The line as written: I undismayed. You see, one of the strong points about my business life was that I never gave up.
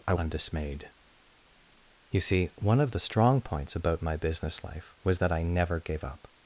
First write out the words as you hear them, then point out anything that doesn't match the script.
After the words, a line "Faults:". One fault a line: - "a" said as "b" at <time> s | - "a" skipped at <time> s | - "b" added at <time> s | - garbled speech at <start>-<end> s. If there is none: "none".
I undismayed. You see, one of the strong points about my business life was that I never gave up.
Faults:
none